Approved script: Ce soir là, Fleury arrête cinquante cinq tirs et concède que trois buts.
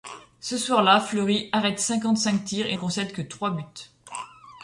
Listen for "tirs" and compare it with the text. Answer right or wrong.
right